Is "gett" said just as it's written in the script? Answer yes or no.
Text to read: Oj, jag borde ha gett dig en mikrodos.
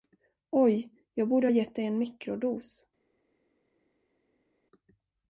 yes